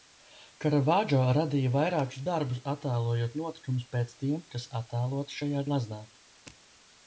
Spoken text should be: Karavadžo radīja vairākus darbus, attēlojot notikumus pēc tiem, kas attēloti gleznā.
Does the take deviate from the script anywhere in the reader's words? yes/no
yes